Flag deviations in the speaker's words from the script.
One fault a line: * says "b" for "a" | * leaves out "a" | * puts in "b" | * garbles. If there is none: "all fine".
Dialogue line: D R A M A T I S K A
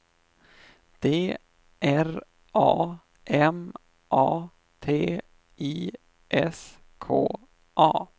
all fine